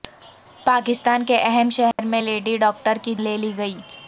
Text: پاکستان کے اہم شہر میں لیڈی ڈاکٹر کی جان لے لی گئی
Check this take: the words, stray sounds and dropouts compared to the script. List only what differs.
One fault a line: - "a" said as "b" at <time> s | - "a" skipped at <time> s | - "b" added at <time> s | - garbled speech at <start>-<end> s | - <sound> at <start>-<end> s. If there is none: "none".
- dropout at 1.9-2.0 s
- "جان" skipped at 3.1 s